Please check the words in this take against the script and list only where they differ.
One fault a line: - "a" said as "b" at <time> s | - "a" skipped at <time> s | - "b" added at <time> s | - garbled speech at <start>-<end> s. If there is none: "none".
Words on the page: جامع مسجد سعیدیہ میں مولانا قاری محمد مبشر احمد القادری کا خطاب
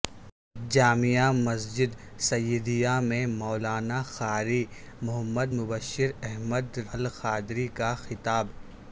none